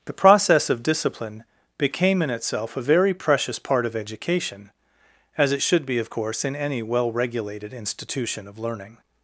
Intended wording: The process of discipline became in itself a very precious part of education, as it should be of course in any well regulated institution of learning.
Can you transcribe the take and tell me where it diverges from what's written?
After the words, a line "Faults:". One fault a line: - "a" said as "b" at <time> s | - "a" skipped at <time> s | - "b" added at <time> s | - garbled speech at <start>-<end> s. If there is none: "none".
The process of discipline became in itself a very precious part of education, as it should be of course in any well regulated institution of learning.
Faults:
none